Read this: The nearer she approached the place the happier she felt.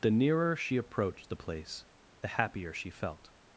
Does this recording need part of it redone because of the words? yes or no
no